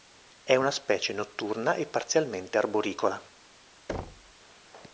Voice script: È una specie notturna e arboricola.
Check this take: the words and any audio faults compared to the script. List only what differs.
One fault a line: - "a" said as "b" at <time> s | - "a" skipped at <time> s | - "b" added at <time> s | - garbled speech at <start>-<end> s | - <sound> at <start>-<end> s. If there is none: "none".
- "parzialmente" added at 1.9 s
- thud at 3.9-4.3 s